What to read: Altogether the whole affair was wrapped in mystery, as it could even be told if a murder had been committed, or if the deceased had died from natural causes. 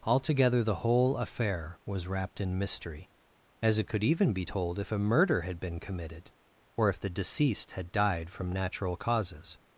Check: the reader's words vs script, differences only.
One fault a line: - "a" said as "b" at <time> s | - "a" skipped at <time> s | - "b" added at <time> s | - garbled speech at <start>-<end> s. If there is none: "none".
none